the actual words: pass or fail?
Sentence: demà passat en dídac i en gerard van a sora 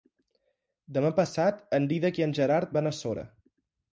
pass